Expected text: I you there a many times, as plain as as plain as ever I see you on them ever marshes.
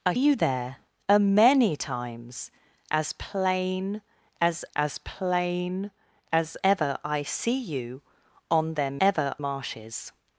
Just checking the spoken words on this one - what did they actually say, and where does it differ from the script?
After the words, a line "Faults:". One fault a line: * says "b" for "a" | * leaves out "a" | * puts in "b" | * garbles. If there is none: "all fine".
I you there a many times, as plain as as plain as ever I see you on them ever marshes.
Faults:
all fine